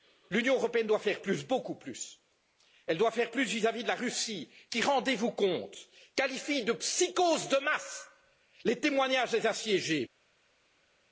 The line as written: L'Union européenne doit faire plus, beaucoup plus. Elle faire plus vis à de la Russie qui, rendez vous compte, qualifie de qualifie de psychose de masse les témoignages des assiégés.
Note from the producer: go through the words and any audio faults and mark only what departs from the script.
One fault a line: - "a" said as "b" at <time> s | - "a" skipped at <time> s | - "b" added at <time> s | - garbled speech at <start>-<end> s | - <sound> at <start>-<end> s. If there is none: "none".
- "doit" added at 3.0 s
- "vis" added at 3.7 s
- "qualifie de" skipped at 6.7 s